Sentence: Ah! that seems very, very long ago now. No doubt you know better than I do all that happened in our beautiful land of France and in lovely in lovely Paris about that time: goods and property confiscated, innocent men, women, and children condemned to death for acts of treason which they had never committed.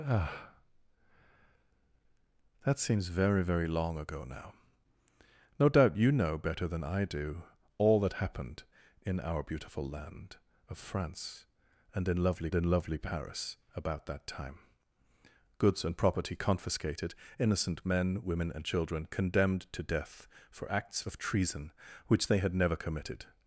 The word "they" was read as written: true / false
true